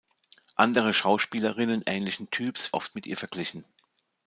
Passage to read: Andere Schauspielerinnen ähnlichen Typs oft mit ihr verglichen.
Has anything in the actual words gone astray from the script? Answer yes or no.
no